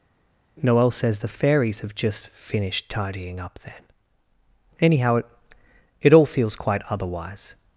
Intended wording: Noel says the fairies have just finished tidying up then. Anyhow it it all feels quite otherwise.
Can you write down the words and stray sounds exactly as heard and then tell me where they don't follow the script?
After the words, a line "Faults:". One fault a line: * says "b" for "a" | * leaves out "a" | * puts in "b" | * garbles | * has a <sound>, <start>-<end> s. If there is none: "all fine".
Noel says the fairies have just finished tidying up then. Anyhow it it all feels quite otherwise.
Faults:
all fine